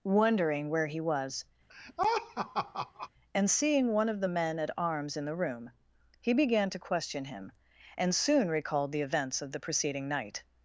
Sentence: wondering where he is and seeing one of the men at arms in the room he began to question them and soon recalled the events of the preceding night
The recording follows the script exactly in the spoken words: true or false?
false